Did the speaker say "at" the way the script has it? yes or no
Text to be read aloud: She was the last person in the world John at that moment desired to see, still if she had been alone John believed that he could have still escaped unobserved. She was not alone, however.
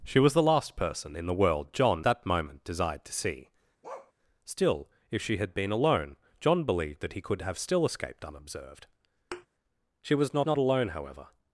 no